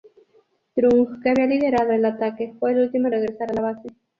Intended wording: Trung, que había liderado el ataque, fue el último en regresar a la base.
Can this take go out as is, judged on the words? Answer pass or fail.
pass